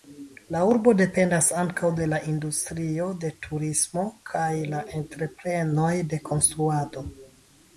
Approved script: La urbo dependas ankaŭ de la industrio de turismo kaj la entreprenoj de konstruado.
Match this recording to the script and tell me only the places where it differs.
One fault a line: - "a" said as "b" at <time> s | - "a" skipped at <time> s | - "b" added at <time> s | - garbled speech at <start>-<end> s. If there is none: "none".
none